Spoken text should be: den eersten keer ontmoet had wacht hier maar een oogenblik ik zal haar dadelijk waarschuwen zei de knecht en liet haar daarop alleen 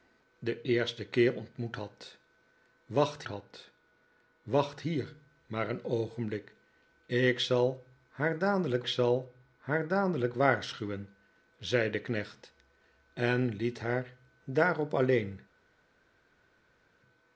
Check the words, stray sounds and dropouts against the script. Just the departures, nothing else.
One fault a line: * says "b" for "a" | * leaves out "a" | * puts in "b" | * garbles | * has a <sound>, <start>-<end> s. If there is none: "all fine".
* puts in "had wacht"
* puts in "zal haar dadelijk"